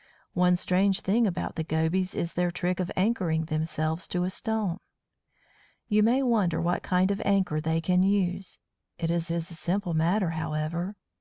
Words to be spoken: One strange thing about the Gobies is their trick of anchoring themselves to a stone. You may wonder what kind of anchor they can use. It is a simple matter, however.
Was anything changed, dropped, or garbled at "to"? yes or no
no